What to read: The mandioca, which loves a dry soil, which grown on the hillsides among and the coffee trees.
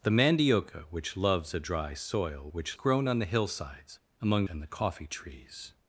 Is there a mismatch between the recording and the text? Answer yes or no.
no